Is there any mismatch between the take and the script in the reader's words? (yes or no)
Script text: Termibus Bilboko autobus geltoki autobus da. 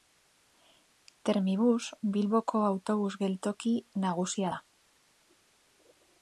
yes